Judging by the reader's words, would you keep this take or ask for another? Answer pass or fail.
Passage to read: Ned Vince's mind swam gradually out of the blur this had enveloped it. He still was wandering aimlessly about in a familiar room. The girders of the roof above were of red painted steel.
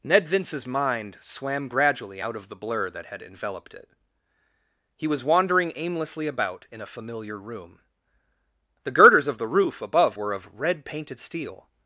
fail